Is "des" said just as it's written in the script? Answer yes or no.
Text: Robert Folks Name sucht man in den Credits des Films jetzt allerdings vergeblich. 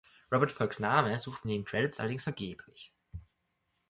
no